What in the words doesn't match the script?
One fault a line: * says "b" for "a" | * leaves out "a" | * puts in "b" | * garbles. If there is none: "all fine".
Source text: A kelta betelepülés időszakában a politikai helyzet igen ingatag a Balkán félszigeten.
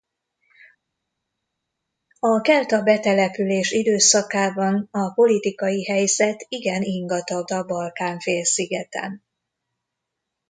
all fine